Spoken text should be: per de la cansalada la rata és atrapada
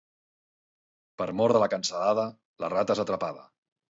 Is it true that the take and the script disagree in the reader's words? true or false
true